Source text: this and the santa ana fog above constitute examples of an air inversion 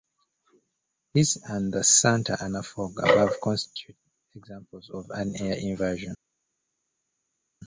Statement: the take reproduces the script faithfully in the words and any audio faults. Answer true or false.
true